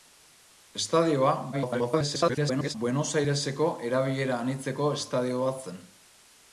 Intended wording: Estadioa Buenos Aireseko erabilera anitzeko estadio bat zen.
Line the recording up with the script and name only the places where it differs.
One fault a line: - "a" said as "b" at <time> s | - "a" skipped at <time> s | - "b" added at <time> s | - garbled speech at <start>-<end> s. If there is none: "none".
- garbled speech at 1.5-2.7 s